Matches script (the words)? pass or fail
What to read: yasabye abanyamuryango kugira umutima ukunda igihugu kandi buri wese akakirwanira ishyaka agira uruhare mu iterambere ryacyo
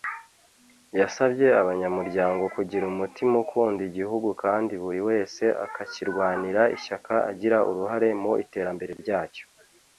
pass